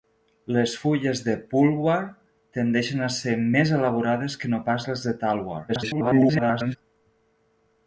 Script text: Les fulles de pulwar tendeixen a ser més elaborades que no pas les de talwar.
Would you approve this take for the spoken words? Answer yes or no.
no